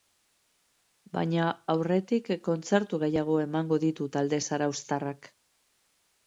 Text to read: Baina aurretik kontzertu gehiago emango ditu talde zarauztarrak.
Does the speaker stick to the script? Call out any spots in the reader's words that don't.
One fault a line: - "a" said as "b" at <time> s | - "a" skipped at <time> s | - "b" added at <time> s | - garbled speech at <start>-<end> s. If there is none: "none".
none